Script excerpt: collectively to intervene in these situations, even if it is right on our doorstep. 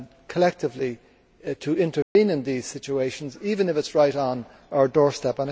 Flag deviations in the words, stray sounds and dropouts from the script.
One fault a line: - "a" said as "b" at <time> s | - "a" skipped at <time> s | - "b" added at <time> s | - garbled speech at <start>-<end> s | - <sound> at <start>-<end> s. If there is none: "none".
- dropout at 2.0-2.2 s